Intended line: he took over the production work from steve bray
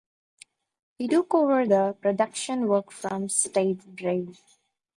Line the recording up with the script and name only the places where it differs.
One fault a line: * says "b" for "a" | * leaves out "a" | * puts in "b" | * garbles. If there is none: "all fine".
all fine